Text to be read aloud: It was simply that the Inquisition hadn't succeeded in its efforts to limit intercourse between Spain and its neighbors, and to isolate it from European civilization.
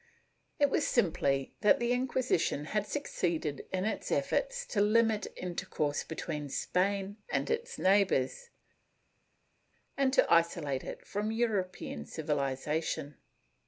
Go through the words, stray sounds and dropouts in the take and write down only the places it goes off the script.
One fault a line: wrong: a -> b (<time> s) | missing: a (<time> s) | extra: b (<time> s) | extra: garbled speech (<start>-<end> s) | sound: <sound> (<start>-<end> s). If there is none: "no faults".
wrong: hadn't -> had (2.6 s)